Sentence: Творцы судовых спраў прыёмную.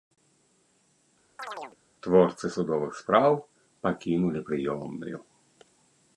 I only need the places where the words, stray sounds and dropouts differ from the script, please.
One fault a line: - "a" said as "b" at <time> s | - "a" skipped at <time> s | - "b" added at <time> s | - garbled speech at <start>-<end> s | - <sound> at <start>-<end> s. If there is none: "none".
- chirp at 1.4-1.8 s
- "пакінулі" added at 3.9 s